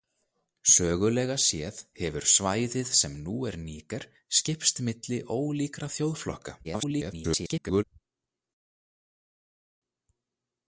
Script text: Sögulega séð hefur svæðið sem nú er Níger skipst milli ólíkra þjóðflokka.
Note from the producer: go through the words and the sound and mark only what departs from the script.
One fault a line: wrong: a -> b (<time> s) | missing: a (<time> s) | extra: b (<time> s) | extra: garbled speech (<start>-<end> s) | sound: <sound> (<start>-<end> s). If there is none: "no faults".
extra: garbled speech (6.6-7.8 s)